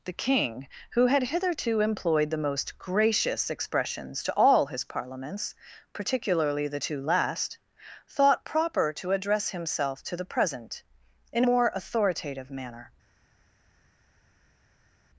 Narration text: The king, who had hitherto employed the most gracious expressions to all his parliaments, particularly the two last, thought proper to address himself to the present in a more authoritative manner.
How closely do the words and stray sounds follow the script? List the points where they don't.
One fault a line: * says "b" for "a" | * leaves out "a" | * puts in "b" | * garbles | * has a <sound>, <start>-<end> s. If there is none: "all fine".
* leaves out "a"